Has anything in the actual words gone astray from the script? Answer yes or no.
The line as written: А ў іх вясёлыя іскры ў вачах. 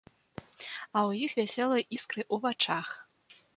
no